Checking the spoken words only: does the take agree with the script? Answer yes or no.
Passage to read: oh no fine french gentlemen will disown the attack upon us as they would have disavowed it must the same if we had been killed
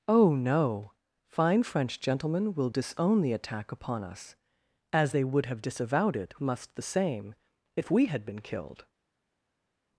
yes